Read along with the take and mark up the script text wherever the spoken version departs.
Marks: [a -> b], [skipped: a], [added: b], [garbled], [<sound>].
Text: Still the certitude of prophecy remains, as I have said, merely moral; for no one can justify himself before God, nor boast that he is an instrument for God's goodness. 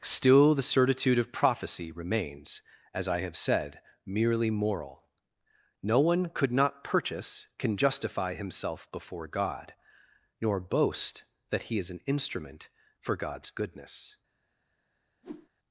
Still the certitude of prophecy remains, as I have said, merely moral; [skipped: for] no one [added: could not purchase] can justify himself before God, nor boast that he is an instrument for God's goodness. [whoosh]